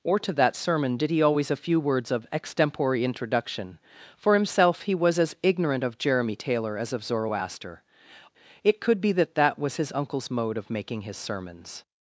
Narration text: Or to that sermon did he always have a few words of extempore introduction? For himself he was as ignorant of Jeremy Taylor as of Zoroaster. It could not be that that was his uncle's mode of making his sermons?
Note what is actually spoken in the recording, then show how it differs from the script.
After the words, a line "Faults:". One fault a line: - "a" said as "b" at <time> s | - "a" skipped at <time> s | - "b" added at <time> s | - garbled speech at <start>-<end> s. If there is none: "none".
Or to that sermon did he always a few words of extempore introduction? For himself he was as ignorant of Jeremy Taylor as of Zoroaster. It could be that that was his uncle's mode of making his sermons?
Faults:
- "have" skipped at 1.5 s
- "not" skipped at 9.0 s